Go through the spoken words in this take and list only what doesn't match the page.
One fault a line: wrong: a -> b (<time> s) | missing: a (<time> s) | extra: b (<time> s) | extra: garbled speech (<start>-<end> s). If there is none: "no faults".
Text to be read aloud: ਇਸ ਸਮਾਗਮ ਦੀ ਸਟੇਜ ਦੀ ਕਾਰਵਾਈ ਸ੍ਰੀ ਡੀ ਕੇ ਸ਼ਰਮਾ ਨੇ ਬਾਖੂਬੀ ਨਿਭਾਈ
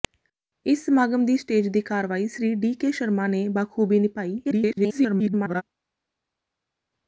extra: garbled speech (4.4-5.6 s)